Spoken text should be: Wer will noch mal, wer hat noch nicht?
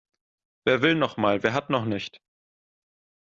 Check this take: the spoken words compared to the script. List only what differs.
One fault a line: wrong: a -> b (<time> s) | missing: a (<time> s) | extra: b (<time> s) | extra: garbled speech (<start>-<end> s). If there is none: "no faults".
no faults